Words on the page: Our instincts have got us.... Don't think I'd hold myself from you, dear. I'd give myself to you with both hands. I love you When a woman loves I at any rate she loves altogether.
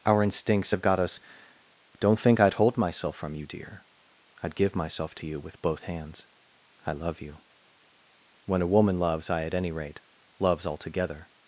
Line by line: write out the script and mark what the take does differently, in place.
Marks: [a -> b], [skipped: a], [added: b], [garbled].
Our instincts have got us.... Don't think I'd hold myself from you, dear. I'd give myself to you with both hands. I love you When a woman loves I at any rate [skipped: she] loves altogether.